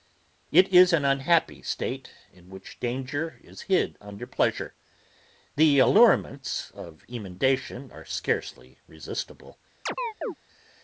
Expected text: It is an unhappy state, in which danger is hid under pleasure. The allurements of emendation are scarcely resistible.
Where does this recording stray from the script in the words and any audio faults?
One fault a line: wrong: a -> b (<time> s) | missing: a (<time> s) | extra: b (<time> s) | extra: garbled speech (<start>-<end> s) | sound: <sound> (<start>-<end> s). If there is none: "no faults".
sound: chirp (9.9-10.3 s)